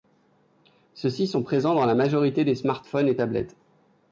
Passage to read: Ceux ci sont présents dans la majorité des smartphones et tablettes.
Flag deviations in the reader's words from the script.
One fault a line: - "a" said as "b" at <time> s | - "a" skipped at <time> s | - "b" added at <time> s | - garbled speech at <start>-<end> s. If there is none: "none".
none